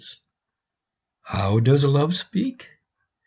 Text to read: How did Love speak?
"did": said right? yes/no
no